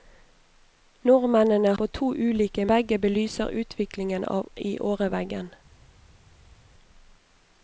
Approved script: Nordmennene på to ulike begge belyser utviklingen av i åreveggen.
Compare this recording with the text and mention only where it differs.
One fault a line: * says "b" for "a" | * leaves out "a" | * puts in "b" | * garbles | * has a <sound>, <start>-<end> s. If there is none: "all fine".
all fine